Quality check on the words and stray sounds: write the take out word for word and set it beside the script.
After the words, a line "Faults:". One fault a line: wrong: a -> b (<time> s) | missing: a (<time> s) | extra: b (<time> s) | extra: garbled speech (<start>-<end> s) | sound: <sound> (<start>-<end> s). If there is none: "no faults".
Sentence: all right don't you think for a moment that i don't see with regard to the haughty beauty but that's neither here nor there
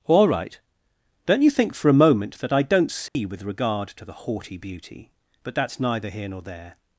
all right don't you think for a moment that i don't see with regard to the haughty beauty but that's neither here nor there
Faults:
sound: dropout (3.1-3.1 s)